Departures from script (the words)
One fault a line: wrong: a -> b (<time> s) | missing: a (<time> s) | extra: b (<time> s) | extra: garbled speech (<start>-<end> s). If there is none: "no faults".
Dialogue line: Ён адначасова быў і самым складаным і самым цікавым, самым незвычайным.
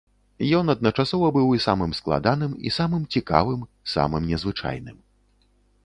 no faults